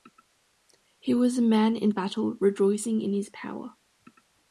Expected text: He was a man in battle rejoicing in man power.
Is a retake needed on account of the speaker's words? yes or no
yes